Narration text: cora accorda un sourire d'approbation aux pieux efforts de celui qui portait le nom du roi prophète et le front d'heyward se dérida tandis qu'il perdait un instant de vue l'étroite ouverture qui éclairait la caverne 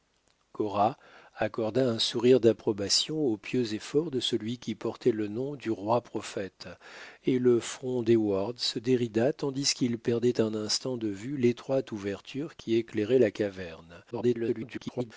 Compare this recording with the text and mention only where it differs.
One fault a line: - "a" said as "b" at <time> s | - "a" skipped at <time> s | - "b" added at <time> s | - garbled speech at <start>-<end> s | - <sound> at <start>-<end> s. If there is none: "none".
- garbled speech at 14.1-15.1 s